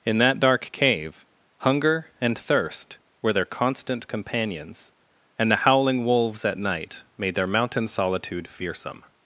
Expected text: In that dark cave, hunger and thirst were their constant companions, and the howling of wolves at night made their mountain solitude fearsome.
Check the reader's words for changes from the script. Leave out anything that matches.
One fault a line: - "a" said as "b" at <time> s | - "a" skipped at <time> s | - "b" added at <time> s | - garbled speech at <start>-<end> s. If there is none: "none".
- "of" skipped at 6.0 s